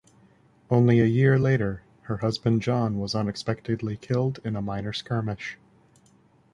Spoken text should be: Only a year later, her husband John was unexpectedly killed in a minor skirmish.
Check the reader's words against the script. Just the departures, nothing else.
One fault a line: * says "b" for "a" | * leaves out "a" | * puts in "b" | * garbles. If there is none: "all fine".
all fine